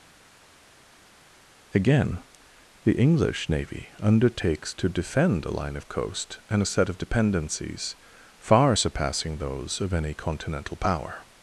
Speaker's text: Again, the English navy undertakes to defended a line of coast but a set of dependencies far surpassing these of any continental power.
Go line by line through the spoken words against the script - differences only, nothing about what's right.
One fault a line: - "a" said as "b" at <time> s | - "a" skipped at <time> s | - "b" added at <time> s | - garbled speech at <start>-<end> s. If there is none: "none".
- "defended" said as "defend" at 4.9 s
- "but" said as "and" at 6.5 s
- "these" said as "those" at 9.4 s